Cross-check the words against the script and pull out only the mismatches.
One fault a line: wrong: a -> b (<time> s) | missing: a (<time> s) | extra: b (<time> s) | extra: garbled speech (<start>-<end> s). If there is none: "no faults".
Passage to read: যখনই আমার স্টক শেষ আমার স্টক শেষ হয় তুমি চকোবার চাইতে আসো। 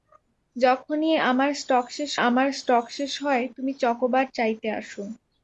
no faults